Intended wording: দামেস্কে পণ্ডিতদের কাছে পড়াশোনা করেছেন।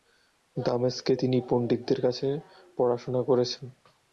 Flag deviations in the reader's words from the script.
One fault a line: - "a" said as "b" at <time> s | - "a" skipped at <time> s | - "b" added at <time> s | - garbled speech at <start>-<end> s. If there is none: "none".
- "তিনি" added at 1.1 s